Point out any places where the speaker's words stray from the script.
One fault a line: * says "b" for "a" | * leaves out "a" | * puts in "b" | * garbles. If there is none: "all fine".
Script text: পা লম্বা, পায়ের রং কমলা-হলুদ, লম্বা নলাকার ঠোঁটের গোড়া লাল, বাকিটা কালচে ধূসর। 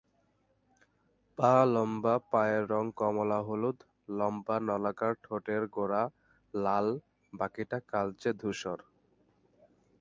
all fine